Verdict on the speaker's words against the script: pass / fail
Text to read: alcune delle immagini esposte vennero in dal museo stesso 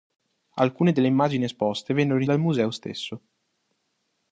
pass